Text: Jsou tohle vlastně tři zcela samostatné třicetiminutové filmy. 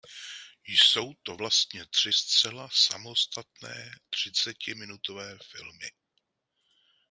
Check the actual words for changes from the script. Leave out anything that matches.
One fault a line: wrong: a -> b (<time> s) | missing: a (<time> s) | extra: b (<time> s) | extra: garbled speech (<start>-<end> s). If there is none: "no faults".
wrong: tohle -> to (1.2 s)